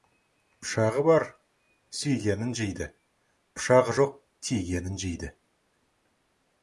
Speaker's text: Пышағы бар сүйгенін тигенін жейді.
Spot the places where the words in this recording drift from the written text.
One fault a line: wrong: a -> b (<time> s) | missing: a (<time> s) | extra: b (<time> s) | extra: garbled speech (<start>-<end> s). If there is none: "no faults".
extra: жейді пышағы жоқ (2.6 s)